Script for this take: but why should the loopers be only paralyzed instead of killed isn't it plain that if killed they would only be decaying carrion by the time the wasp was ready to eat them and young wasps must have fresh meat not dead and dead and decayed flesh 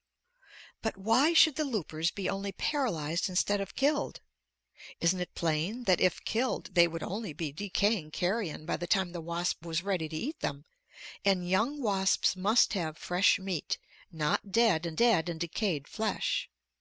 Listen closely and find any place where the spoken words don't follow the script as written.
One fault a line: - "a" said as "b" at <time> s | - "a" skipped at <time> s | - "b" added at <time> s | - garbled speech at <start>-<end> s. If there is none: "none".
none